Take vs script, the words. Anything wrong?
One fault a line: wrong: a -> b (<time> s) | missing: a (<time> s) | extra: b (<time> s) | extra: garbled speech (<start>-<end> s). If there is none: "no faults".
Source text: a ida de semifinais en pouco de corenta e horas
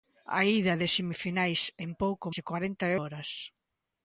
no faults